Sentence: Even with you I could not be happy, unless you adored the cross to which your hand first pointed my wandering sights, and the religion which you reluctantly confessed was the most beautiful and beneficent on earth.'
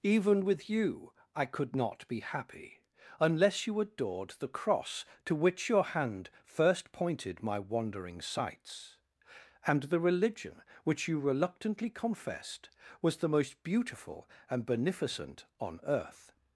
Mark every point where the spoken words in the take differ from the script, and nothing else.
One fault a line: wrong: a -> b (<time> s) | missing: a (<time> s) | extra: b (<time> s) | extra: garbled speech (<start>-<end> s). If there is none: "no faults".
no faults